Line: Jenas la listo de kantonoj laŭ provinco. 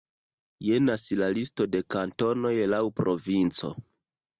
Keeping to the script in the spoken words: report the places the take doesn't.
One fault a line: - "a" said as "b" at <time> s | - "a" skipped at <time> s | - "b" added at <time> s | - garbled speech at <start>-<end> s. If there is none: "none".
none